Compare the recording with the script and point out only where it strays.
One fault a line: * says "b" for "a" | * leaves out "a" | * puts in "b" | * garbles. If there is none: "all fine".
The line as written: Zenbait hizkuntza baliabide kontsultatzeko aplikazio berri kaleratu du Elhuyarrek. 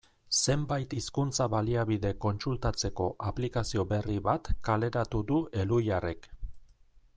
* puts in "bat"